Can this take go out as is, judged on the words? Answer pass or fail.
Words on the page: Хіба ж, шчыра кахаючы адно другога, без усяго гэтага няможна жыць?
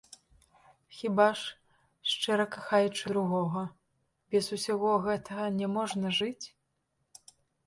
fail